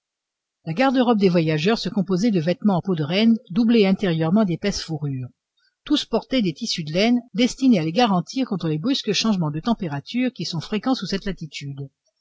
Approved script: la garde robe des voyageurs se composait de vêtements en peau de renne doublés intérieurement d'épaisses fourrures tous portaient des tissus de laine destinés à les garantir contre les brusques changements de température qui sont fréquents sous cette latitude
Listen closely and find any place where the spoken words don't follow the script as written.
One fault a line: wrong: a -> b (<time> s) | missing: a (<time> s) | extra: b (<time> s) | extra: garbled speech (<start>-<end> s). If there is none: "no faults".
no faults